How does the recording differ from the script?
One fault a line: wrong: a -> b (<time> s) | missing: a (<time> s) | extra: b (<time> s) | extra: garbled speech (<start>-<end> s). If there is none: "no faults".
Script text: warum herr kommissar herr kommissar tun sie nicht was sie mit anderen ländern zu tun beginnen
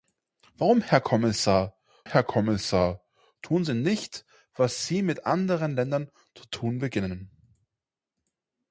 no faults